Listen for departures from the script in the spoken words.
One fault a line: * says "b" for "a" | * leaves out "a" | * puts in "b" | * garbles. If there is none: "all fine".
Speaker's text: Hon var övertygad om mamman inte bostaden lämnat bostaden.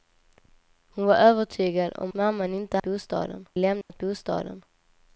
all fine